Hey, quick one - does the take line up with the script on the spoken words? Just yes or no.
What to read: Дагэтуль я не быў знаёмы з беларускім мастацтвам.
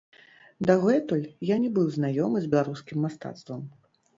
yes